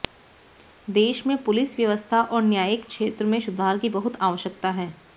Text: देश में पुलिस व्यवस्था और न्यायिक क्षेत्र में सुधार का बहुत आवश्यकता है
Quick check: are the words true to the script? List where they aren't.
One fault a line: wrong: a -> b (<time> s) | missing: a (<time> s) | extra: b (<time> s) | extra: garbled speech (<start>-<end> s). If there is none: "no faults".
wrong: का -> की (3.8 s)